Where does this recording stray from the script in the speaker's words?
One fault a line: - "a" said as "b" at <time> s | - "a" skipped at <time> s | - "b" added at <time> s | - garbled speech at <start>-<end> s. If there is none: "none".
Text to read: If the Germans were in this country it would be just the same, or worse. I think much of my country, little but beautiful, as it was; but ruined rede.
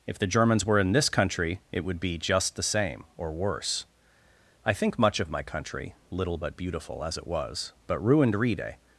none